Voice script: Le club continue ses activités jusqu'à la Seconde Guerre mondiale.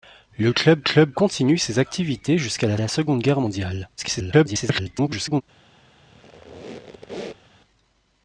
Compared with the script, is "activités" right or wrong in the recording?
right